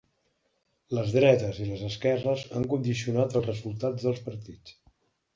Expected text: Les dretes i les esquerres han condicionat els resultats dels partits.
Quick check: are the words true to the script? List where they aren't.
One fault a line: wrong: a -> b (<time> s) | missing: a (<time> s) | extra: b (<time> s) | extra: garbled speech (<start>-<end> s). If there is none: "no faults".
no faults